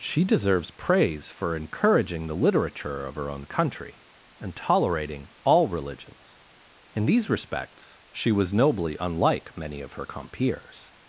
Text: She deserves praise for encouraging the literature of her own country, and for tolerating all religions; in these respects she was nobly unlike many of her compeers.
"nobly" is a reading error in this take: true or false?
false